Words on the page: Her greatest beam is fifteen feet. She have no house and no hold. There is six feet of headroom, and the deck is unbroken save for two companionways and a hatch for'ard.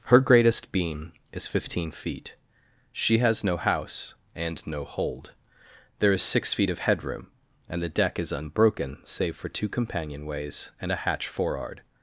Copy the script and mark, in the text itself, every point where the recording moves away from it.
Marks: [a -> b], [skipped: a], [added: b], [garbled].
Her greatest beam is fifteen feet. She [have -> has] no house and no hold. There is six feet of headroom, and the deck is unbroken save for two companionways and a hatch for'ard.